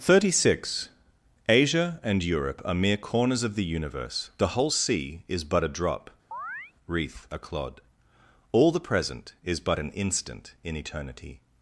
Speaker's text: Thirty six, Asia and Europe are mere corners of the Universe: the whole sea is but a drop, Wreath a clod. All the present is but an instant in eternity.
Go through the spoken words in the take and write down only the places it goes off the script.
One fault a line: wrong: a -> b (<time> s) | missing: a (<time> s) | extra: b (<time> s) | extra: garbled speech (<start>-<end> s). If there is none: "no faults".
no faults